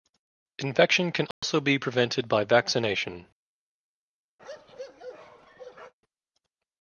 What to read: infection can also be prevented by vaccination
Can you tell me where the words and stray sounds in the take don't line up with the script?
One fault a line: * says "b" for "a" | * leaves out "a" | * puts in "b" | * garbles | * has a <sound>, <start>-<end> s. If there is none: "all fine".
* has a dropout, 1.3-1.4 s
* has a bark, 4.4-5.9 s